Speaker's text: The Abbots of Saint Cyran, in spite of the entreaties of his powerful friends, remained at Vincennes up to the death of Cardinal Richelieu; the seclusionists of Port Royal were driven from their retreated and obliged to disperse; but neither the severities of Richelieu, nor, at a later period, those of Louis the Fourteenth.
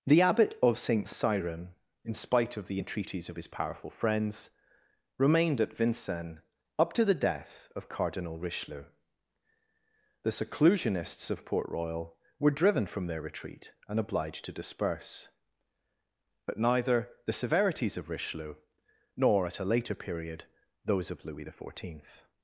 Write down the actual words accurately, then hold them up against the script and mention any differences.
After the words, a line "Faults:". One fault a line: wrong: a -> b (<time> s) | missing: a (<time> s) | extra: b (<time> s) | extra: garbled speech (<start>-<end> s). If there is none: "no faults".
The Abbot of Saint Cyran, in spite of the entreaties of his powerful friends, remained at Vincennes up to the death of Cardinal Richelieu; the seclusionists of Port Royal were driven from their retreat and obliged to disperse; but neither the severities of Richelieu, nor, at a later period, those of Louis the Fourteenth.
Faults:
wrong: Abbots -> Abbot (0.2 s)
wrong: retreated -> retreat (13.2 s)